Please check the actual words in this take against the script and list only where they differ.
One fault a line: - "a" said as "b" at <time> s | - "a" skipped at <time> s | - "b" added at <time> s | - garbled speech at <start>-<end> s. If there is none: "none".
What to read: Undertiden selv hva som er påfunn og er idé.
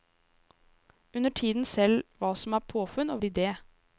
none